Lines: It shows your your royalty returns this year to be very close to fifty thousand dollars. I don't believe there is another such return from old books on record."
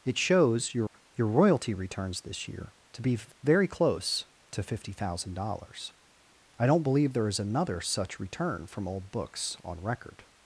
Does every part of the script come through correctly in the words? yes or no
yes